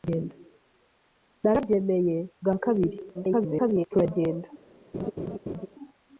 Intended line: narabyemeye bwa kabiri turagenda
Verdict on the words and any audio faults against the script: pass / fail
fail